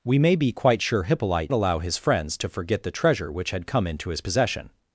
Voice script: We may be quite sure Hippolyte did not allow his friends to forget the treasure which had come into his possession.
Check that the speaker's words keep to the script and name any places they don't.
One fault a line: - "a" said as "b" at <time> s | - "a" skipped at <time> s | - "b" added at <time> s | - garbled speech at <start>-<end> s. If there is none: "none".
- "did not" skipped at 1.5 s